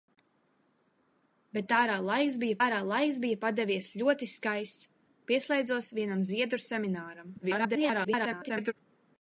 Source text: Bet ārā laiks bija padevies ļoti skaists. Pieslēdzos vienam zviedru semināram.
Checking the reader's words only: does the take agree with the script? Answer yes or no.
no